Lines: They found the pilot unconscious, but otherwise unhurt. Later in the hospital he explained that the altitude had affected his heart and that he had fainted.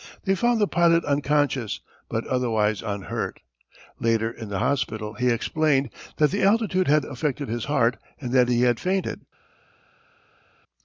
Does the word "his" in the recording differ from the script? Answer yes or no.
no